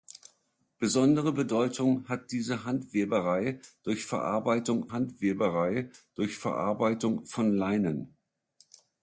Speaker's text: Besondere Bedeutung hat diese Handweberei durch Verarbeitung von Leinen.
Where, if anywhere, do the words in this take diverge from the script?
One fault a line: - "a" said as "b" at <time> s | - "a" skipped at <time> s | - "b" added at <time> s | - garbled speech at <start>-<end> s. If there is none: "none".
- "Handweberei durch Verarbeitung" added at 4.9 s